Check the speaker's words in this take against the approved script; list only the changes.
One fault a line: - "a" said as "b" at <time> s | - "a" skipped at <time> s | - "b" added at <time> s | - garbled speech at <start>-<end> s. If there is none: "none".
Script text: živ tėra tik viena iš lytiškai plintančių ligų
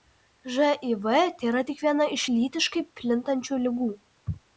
none